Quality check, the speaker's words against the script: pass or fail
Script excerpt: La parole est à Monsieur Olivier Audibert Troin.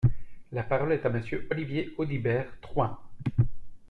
pass